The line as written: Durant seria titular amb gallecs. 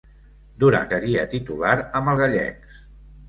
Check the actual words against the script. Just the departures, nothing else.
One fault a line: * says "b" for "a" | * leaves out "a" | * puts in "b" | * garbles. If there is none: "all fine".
all fine